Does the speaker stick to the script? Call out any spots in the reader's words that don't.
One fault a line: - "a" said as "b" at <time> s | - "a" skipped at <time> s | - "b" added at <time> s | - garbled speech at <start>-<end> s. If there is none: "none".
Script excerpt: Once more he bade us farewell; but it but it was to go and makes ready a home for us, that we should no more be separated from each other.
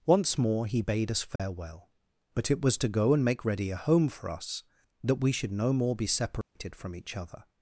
- "but it" skipped at 2.6 s
- "makes" said as "make" at 3.3 s